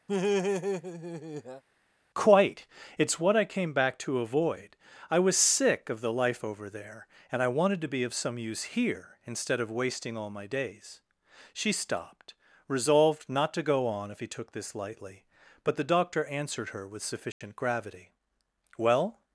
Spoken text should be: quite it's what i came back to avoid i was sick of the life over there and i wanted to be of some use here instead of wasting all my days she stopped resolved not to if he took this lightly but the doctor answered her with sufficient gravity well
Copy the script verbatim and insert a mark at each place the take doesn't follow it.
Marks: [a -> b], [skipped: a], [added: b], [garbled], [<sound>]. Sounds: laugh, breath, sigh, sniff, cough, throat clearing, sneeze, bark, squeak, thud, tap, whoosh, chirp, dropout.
[laugh] quite it's what i came back to avoid i was sick of the life over there and i wanted to be of some use here instead of wasting all my days she stopped resolved not to [added: go on] if he took this lightly but the doctor answered her with sufficient [dropout] gravity well